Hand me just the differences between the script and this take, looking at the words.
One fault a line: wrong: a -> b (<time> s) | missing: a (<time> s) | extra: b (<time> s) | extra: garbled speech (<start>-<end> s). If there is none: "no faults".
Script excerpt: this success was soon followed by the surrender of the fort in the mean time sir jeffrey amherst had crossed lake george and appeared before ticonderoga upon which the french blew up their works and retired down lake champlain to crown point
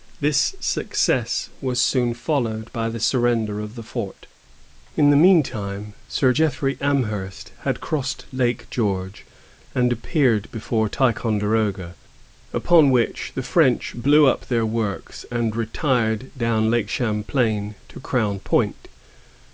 no faults